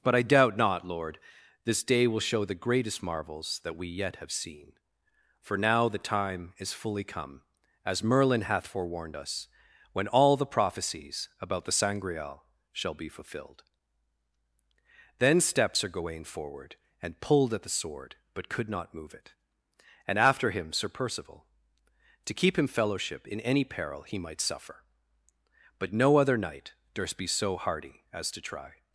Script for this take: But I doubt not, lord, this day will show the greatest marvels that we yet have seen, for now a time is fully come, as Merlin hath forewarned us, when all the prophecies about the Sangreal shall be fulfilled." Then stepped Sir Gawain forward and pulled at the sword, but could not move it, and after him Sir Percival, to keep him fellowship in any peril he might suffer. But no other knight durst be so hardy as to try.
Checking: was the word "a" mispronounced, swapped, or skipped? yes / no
yes